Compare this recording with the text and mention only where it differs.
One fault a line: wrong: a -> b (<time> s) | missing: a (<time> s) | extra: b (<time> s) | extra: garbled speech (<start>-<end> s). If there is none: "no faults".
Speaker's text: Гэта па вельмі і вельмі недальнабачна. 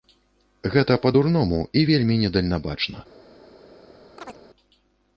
wrong: вельмі -> дурному (1.2 s)